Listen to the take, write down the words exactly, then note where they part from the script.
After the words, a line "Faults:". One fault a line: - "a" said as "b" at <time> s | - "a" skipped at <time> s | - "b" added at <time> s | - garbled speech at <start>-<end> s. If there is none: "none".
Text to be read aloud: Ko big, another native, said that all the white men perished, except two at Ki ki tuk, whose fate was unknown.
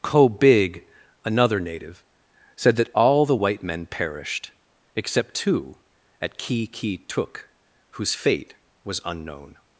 Ko big, another native, said that all the white men perished, except two at Ki ki tuk, whose fate was unknown.
Faults:
none